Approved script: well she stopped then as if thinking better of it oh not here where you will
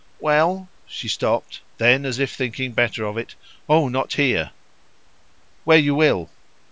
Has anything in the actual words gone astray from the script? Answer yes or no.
no